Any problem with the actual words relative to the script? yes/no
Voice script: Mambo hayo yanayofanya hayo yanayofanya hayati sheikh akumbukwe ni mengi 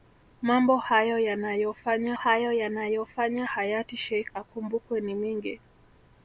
no